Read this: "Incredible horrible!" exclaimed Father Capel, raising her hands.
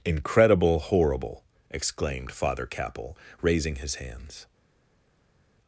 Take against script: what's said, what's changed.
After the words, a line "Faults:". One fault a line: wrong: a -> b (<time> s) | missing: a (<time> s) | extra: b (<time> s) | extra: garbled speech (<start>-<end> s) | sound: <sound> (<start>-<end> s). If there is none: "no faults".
"Incredible horrible!" exclaimed Father Capel, raising his hands.
Faults:
wrong: her -> his (3.7 s)